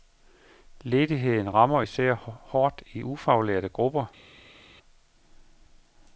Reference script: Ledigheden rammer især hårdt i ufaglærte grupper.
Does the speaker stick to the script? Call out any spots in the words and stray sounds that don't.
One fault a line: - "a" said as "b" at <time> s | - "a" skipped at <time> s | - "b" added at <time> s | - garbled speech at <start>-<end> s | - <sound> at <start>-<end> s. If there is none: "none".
none